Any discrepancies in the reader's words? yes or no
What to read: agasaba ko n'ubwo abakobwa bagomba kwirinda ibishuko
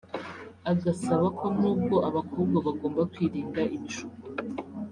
no